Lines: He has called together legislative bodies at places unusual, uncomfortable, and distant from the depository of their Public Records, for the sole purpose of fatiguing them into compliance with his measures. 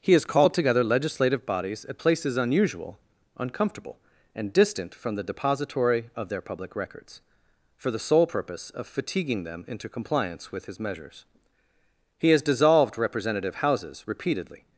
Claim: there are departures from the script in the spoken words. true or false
true